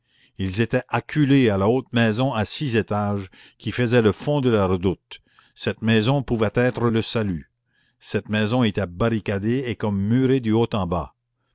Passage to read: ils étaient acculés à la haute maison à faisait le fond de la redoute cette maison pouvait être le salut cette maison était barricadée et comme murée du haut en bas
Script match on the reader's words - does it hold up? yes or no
no